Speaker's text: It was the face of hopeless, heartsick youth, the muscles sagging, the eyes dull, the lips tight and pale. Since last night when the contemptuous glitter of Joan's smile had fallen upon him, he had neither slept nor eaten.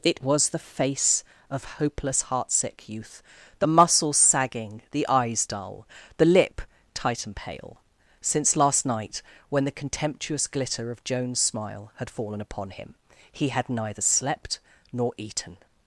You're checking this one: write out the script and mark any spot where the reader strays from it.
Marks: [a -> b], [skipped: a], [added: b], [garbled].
It was the face of hopeless, heartsick youth, the muscles sagging, the eyes dull, the [lips -> lip] tight and pale. Since last night when the contemptuous glitter of Joan's smile had fallen upon him, he had neither slept nor eaten.